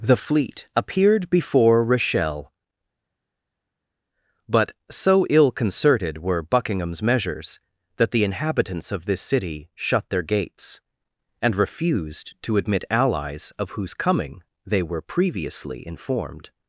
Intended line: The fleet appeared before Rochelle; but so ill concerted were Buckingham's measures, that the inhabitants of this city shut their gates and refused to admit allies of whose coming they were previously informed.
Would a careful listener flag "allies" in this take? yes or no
no